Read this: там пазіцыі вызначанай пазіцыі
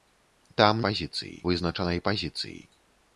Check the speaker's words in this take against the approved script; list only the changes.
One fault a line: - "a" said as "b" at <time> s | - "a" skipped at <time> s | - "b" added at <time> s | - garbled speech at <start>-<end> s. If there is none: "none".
none